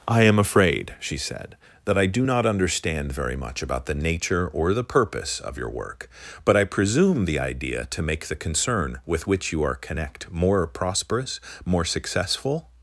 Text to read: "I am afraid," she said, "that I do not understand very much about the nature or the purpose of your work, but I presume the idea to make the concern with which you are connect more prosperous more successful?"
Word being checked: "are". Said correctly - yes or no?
yes